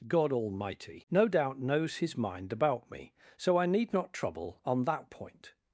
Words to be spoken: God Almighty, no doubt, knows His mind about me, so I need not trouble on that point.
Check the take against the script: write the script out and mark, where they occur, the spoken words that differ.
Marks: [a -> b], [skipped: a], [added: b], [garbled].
God Almighty, no doubt, knows His mind about me, so I need not trouble on that point.